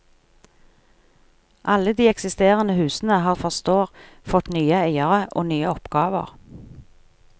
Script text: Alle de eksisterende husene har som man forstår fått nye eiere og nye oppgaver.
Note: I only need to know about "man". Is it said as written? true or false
false